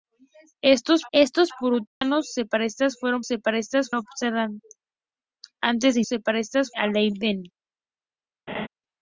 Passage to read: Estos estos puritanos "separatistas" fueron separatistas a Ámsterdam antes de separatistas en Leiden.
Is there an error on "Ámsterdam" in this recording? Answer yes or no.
no